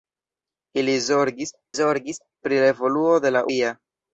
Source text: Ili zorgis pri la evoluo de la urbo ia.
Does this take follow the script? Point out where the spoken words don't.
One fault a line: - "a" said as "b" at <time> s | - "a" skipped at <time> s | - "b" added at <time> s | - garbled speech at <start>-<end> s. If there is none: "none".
- "zorgis" added at 1.8 s
- "urbo" skipped at 3.4 s